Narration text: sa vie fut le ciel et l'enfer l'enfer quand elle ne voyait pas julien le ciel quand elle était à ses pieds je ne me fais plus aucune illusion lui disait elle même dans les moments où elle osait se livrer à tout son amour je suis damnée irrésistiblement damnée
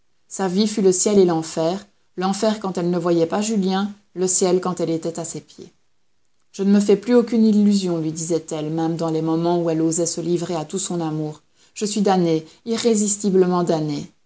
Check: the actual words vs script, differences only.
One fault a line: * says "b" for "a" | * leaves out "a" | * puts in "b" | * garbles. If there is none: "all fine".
all fine